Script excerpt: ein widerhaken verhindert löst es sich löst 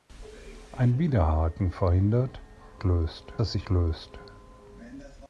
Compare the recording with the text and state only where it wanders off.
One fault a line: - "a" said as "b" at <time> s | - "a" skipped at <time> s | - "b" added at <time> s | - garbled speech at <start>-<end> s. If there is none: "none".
none